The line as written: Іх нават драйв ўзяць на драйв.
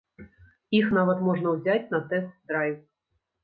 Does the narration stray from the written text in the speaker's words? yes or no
yes